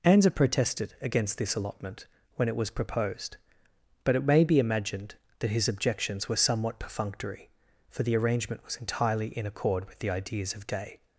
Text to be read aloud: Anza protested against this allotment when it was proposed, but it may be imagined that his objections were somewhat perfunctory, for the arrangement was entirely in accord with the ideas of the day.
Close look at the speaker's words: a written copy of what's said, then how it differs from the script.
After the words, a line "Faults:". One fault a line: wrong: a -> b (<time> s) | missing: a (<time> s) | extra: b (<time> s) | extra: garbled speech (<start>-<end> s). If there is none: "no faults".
Anza protested against this allotment when it was proposed, but it may be imagined that his objections were somewhat perfunctory, for the arrangement was entirely in accord with the ideas of day.
Faults:
missing: the (10.7 s)